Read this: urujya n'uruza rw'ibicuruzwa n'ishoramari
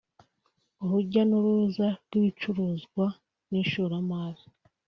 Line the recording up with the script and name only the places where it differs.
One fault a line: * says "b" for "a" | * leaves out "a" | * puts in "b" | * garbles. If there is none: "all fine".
all fine